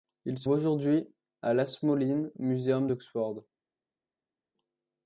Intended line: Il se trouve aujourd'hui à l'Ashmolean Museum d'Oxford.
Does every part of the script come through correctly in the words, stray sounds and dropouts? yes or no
no